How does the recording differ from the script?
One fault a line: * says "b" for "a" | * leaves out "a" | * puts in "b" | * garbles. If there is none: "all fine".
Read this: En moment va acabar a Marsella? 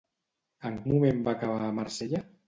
all fine